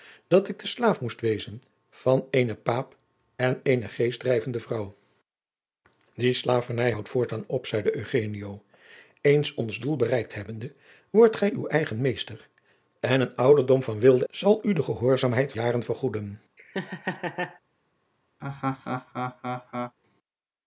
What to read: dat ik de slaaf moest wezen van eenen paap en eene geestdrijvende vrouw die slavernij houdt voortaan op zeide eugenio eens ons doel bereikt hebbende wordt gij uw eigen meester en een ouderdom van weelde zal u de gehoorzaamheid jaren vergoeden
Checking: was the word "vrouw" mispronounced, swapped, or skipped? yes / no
no